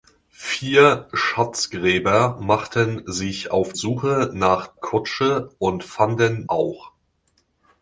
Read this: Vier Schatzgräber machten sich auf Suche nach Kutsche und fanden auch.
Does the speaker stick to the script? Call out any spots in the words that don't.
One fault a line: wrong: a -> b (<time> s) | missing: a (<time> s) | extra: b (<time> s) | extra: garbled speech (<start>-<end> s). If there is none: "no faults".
no faults